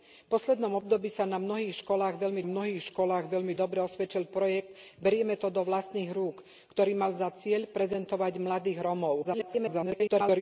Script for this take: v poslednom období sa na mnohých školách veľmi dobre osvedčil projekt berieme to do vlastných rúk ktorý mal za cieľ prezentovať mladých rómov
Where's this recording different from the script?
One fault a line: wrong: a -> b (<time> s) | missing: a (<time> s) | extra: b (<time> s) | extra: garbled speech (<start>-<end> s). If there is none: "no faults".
extra: mnohých školách veľmi (2.4 s)
extra: garbled speech (9.2-10.4 s)